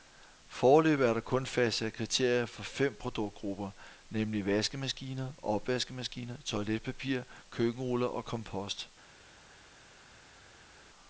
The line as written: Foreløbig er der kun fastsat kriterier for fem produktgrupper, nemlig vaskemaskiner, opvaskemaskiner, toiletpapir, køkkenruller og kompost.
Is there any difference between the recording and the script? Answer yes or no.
no